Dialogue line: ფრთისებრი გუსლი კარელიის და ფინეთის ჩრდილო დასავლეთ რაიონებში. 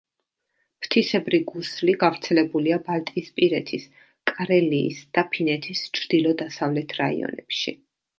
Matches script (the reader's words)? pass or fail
fail